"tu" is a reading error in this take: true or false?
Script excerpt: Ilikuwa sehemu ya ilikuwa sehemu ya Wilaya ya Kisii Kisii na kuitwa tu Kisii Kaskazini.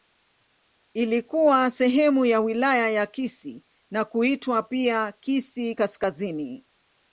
true